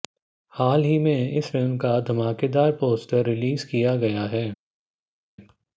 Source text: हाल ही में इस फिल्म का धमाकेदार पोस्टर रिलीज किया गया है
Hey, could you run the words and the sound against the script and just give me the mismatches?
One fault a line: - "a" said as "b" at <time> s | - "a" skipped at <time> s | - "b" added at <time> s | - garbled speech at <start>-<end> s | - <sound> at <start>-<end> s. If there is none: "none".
none